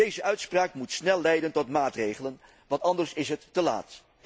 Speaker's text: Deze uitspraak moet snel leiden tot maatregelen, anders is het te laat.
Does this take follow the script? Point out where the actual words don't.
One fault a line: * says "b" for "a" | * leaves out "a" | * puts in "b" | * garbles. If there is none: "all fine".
* puts in "want"